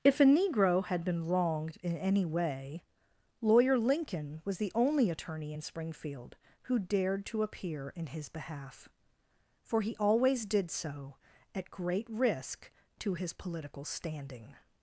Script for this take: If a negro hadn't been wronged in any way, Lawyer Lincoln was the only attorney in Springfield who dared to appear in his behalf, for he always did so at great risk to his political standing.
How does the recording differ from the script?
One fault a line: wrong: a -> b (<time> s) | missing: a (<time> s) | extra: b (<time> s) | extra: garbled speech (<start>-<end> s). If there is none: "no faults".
wrong: hadn't -> had (0.8 s)